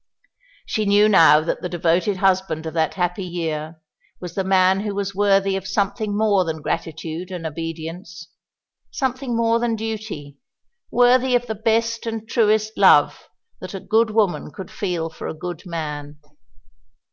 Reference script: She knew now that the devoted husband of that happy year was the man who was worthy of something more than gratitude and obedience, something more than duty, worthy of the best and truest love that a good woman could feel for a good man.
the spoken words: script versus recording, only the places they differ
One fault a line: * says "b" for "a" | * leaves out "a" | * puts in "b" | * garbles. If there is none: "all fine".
all fine